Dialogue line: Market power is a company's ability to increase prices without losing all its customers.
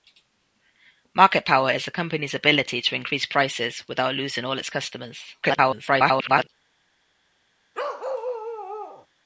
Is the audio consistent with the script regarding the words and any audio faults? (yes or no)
no